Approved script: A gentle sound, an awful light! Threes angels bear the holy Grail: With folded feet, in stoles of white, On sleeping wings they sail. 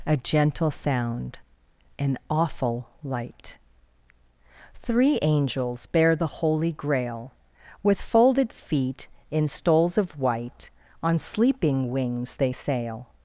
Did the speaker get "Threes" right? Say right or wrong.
wrong